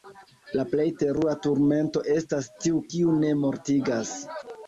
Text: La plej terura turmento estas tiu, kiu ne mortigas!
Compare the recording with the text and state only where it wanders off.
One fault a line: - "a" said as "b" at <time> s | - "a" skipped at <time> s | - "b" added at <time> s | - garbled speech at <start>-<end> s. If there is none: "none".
none